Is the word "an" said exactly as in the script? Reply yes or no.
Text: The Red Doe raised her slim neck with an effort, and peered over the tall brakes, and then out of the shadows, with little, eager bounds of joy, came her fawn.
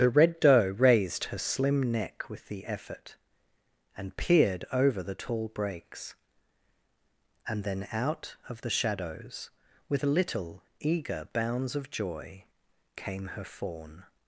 no